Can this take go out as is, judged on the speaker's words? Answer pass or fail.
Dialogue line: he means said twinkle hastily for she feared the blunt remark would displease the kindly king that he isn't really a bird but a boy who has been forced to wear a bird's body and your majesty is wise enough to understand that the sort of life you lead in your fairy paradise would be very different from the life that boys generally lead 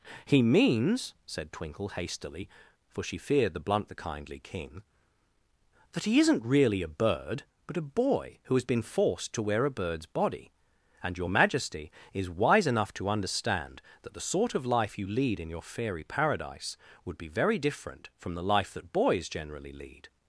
fail